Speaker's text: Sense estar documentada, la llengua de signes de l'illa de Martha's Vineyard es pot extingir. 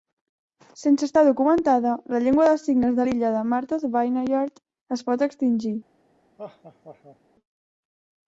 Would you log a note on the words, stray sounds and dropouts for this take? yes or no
yes